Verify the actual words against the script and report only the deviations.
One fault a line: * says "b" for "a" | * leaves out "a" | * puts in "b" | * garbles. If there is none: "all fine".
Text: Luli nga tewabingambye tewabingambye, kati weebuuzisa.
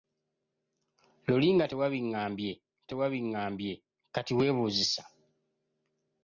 all fine